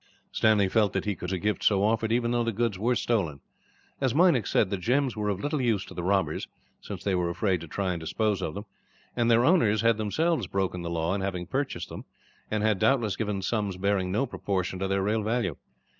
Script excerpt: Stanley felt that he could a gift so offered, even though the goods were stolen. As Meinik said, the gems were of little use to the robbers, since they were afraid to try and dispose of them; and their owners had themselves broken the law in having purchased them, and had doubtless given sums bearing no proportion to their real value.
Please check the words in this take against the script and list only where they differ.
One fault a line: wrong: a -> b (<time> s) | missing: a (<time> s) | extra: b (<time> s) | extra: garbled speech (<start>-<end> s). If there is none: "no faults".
no faults